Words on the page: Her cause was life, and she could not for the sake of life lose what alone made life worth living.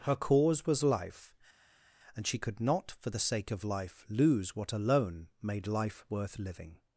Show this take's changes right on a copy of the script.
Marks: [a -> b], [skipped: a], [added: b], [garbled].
Her cause was life, and she could not for the sake of life lose what alone made life worth living.